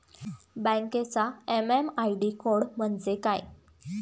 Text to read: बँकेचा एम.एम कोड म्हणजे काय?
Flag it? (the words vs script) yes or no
yes